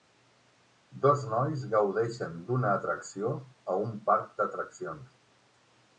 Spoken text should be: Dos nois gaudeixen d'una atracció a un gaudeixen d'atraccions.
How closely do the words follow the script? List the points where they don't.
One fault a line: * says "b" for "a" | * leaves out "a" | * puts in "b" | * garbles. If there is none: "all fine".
* says "parc" for "gaudeixen"